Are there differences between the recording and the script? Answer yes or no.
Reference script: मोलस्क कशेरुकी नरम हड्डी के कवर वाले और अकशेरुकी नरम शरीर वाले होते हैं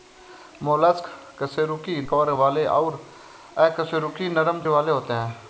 yes